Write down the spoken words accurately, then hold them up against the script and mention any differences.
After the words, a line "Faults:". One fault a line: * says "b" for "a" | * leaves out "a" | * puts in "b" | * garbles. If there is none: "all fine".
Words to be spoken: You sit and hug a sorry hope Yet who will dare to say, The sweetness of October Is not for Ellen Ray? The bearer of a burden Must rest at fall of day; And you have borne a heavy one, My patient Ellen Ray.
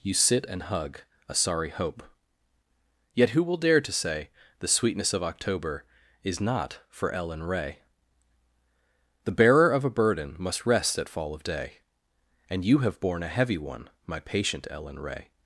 You sit and hug a sorry hope Yet who will dare to say, The sweetness of October Is not for Ellen Ray? The bearer of a burden Must rest at fall of day; And you have borne a heavy one, My patient Ellen Ray.
Faults:
all fine